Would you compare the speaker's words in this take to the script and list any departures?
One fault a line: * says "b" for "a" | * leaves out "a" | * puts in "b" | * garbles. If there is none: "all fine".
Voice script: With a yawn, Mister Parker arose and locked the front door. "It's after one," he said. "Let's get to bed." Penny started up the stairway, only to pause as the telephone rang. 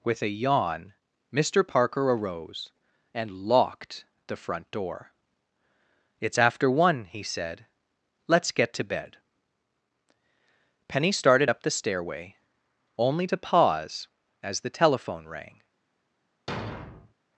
all fine